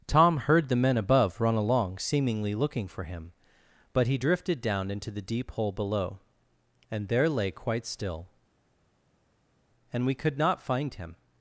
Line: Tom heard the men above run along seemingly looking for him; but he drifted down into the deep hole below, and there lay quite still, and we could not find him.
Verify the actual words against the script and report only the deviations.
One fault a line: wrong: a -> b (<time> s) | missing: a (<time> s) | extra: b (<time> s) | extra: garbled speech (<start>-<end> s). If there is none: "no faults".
no faults